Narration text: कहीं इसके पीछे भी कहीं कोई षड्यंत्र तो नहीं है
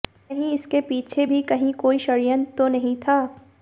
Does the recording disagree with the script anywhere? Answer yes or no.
yes